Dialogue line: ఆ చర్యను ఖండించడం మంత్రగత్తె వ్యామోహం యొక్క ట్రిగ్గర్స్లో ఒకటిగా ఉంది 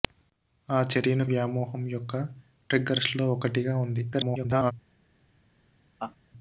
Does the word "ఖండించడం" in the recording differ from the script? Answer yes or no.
yes